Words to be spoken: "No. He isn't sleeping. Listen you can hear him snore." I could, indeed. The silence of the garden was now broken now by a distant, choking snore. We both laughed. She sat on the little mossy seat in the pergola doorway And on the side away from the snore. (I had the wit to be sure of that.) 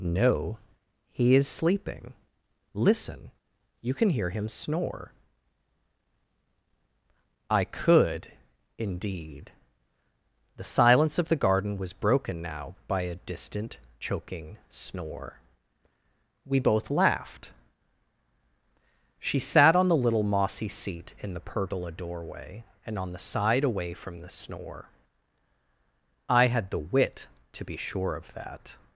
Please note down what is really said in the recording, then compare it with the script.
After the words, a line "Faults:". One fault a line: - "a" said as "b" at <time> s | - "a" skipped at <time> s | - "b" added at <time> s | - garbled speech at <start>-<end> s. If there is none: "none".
"No. He is sleeping. Listen you can hear him snore." I could, indeed. The silence of the garden was broken now by a distant, choking snore. We both laughed. She sat on the little mossy seat in the pergola doorway And on the side away from the snore. (I had the wit to be sure of that.)
Faults:
- "isn't" said as "is" at 1.4 s
- "now" skipped at 11.9 s